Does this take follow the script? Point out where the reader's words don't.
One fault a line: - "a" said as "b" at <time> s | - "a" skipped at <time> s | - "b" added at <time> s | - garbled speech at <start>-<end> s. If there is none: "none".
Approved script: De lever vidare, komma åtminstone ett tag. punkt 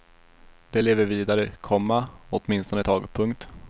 none